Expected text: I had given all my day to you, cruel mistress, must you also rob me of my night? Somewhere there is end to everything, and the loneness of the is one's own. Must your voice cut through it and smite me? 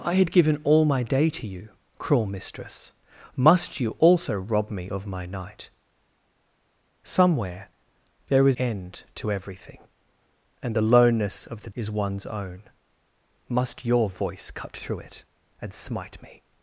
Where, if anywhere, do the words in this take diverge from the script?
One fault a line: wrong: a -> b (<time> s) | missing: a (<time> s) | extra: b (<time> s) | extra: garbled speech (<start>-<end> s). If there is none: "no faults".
no faults